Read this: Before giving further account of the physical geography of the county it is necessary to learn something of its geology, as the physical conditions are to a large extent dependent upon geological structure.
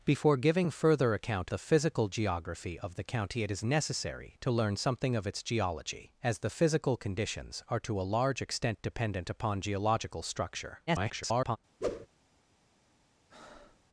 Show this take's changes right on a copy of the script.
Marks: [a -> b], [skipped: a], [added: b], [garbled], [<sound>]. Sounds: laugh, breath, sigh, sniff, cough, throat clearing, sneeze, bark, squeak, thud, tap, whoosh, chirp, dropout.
Before giving further account [skipped: of] the physical geography of the county it is necessary to learn something of its geology, as the physical conditions are to a large extent dependent upon geological structure. [garbled] [whoosh] [breath]